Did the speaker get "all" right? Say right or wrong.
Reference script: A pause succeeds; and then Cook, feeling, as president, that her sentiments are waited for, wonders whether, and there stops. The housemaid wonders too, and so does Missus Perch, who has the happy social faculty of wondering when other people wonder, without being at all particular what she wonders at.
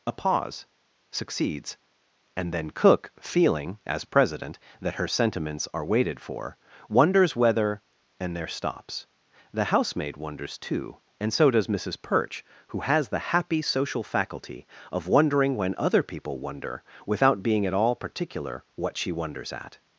right